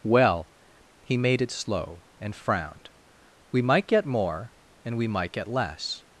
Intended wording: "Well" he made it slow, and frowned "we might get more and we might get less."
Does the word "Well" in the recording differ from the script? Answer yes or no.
no